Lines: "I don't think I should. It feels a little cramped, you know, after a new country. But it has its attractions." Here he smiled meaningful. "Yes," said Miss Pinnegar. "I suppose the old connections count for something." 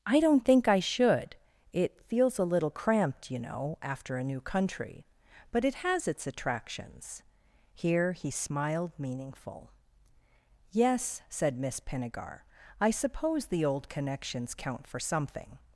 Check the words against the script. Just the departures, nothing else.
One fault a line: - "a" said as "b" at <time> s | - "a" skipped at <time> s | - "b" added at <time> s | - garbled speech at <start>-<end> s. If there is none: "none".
none